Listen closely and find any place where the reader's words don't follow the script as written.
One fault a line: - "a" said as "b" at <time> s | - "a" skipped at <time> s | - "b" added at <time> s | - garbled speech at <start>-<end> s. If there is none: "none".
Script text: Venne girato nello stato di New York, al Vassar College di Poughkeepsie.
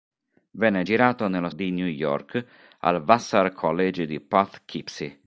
- "stato" skipped at 1.5 s